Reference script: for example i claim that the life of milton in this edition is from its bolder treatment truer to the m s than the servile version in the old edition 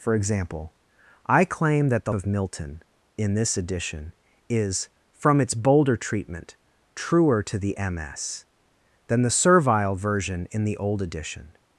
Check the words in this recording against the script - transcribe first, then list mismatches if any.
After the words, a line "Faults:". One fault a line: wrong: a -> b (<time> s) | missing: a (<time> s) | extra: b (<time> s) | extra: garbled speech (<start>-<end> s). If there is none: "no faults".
for example i claim that the of milton in this edition is from its bolder treatment truer to the m s than the servile version in the old edition
Faults:
missing: life (2.1 s)